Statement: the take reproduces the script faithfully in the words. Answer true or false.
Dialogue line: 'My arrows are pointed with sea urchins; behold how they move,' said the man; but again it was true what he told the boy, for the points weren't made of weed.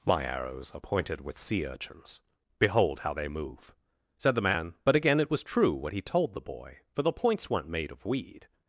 true